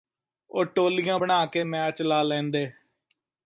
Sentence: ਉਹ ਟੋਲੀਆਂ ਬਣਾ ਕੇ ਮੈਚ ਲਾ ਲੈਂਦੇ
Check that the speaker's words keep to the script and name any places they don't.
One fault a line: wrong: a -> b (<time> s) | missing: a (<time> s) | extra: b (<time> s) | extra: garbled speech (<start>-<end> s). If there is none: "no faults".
no faults